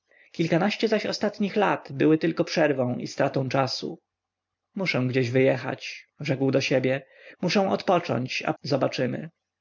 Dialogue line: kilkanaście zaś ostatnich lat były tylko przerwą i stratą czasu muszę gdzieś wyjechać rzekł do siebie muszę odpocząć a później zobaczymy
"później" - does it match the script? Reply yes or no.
no